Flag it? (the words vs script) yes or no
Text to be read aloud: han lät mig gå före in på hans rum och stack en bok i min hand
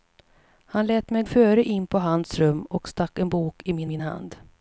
yes